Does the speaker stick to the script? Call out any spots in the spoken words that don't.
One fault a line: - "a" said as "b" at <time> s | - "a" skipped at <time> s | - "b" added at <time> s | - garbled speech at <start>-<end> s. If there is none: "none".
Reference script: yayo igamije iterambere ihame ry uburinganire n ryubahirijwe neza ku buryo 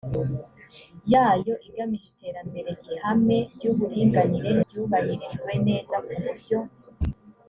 none